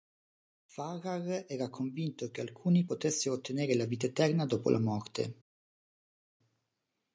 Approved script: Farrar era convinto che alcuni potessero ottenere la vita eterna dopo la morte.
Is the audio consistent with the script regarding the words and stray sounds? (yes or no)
yes